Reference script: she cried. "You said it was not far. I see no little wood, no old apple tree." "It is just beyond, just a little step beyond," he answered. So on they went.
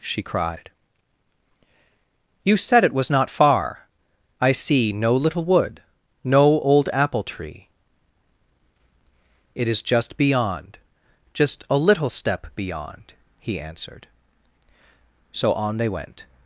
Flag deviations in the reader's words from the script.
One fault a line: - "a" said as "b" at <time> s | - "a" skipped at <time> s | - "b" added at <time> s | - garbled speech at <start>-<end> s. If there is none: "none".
none